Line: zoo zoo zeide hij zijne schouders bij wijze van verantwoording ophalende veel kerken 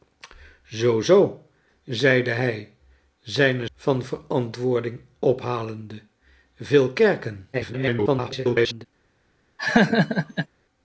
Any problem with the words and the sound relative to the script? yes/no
yes